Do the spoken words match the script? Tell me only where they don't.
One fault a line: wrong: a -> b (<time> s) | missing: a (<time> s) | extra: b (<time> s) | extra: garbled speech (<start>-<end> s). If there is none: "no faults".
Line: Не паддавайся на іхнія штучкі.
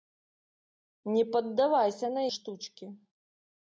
missing: іхнія (2.2 s)